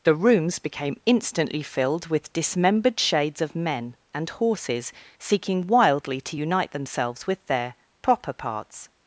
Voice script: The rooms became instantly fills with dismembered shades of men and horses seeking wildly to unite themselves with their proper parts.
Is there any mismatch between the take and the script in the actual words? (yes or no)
yes